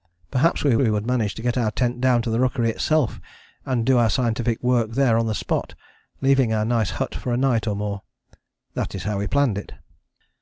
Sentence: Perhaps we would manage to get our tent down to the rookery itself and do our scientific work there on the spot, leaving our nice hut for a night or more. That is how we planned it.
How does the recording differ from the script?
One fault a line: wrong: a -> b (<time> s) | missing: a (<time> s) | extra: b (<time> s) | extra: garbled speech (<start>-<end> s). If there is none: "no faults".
extra: we (0.8 s)